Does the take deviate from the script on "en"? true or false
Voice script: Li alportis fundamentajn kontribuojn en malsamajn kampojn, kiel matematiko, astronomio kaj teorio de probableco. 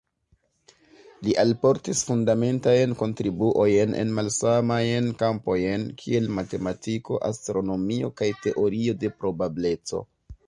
false